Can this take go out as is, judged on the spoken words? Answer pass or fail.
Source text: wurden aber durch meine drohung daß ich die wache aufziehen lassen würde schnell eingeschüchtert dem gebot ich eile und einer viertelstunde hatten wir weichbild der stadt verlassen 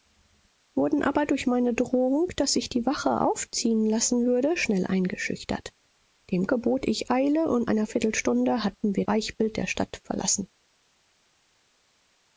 pass